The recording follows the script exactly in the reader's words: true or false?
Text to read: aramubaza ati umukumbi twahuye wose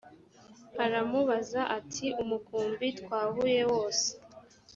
true